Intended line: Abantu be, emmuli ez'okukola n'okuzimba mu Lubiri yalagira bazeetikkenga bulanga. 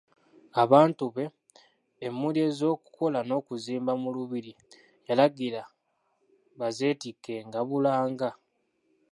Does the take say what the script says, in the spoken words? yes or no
yes